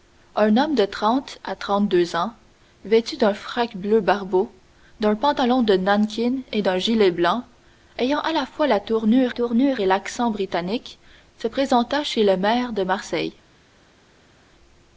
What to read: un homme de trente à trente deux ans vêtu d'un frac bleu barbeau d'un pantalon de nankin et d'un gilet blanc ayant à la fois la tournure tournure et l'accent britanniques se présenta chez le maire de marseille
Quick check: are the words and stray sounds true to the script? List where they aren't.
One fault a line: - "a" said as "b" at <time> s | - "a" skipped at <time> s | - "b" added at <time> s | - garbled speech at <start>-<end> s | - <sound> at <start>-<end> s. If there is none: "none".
none